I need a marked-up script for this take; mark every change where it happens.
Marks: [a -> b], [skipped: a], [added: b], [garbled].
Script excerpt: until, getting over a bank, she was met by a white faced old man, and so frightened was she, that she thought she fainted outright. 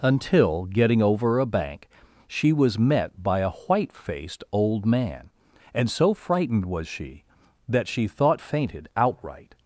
until, getting over a bank, she was met by a white faced old man, and so frightened was she, that she thought [skipped: she] fainted outright.